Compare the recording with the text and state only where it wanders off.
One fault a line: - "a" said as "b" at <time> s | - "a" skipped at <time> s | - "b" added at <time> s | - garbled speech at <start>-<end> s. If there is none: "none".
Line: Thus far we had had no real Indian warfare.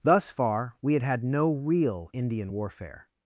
none